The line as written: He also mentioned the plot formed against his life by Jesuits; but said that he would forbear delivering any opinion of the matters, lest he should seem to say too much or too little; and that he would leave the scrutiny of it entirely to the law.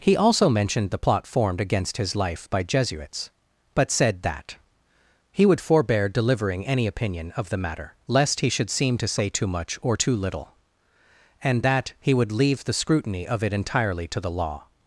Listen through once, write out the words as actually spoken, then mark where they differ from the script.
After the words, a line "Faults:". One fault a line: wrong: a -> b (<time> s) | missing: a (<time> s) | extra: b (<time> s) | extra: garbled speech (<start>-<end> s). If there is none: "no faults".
He also mentioned the plot formed against his life by Jesuits; but said that he would forbear delivering any opinion of the matter, lest he should seem to say too much or too little; and that he would leave the scrutiny of it entirely to the law.
Faults:
wrong: matters -> matter (7.6 s)